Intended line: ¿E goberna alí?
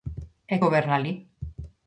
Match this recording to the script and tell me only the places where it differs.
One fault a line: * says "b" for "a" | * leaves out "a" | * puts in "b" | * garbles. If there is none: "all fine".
all fine